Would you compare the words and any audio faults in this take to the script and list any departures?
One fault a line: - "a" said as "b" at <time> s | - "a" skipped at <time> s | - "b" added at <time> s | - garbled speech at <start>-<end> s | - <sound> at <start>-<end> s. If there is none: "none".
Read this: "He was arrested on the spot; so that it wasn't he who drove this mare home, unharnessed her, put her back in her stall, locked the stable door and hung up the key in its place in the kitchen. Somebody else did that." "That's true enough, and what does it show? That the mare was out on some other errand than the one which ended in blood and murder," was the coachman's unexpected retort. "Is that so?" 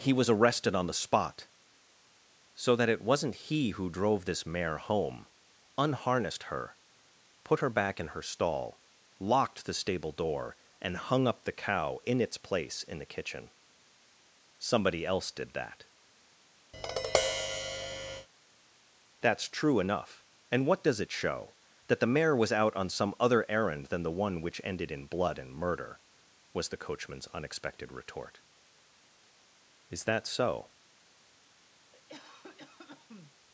- "key" said as "cow" at 11.5 s
- tap at 16.7-18.3 s
- cough at 31.9-33.3 s